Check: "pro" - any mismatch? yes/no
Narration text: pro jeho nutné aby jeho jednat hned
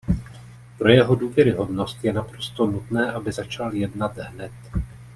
no